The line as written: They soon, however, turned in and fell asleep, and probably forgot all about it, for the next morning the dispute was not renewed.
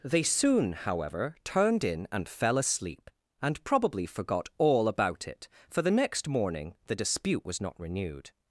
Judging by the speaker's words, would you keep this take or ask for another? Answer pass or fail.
pass